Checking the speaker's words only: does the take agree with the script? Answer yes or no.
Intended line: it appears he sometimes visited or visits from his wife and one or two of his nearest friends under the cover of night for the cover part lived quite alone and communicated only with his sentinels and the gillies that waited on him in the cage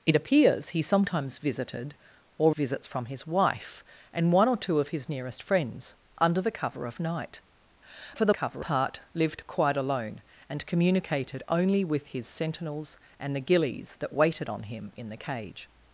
yes